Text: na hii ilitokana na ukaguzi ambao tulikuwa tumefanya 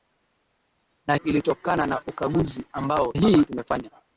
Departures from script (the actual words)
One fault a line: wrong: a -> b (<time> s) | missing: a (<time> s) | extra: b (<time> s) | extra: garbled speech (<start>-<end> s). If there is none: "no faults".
missing: hii (1.1 s)
wrong: tulikuwa -> hii (3.1 s)